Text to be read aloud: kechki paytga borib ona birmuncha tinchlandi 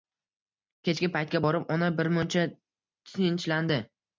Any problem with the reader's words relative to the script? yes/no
no